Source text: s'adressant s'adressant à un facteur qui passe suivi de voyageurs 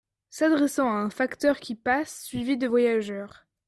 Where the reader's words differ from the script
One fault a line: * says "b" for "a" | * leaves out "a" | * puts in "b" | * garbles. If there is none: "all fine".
* leaves out "s'adressant"